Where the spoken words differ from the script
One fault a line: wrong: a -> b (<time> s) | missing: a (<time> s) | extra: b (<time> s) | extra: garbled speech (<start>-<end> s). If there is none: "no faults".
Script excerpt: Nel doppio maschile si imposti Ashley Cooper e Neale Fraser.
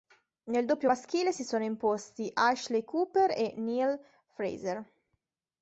extra: sono (1.4 s)